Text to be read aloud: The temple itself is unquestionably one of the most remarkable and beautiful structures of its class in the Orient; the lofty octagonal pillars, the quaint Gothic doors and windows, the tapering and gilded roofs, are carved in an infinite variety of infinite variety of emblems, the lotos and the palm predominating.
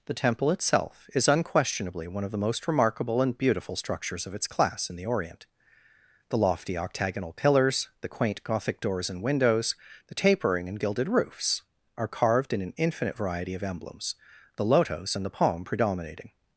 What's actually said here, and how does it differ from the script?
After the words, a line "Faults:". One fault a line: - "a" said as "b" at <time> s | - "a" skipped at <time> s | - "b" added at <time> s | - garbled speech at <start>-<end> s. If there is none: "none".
The temple itself is unquestionably one of the most remarkable and beautiful structures of its class in the Orient; the lofty octagonal pillars, the quaint Gothic doors and windows, the tapering and gilded roofs, are carved in an infinite variety of emblems, the lotos and the palm predominating.
Faults:
- "infinite variety of" skipped at 13.6 s